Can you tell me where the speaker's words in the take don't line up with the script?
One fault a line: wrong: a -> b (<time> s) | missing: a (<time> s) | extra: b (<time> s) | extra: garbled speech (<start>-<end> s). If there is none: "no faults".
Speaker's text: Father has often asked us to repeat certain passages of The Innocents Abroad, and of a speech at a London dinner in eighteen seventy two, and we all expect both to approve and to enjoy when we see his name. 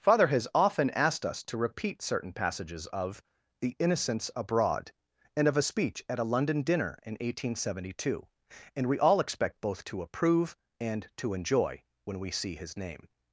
no faults